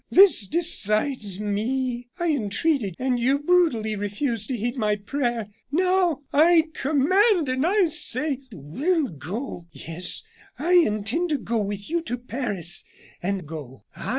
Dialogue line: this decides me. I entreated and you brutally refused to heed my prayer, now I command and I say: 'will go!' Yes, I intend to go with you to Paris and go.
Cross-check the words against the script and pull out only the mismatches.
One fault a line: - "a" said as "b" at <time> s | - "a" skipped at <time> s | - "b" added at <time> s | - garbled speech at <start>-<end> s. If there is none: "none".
none